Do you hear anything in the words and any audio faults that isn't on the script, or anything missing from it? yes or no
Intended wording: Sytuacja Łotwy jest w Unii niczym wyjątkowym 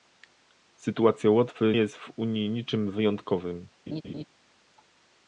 yes